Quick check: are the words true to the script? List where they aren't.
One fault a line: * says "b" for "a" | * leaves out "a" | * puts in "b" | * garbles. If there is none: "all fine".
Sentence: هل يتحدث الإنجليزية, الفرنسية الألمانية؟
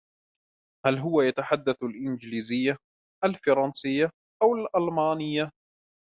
* puts in "هو"
* puts in "أو"